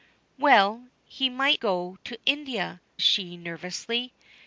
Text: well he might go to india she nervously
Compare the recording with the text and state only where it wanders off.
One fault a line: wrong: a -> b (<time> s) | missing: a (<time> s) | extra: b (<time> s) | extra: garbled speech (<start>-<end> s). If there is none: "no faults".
no faults